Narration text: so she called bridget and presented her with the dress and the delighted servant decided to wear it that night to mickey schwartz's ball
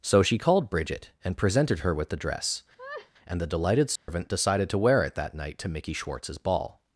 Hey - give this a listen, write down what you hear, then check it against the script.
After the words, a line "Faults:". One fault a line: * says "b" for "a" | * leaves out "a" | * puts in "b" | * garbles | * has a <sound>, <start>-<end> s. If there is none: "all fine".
so she called bridget and presented her with the dress and the delighted servant decided to wear it that night to mickey schwartz's ball
Faults:
* has a laugh, 2.8-3.1 s
* has a dropout, 4.0-4.1 s